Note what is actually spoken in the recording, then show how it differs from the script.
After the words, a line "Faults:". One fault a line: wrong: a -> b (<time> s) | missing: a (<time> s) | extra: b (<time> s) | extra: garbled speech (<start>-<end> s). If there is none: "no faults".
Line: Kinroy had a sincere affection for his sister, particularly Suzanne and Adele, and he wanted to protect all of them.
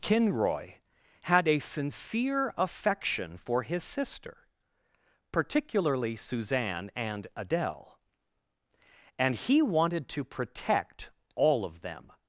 Kinroy had a sincere affection for his sister, particularly Suzanne and Adele, and he wanted to protect all of them.
Faults:
no faults